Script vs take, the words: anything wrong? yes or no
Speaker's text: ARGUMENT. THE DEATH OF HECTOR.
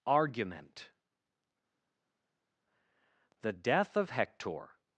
no